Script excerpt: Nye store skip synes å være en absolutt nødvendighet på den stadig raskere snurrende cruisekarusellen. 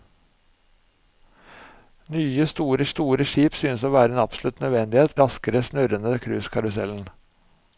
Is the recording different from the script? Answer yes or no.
yes